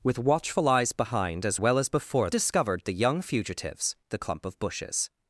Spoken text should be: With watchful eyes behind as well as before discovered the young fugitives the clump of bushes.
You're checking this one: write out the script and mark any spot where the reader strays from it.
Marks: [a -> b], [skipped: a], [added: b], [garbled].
With watchful eyes behind as well as before discovered the young fugitives the clump of bushes.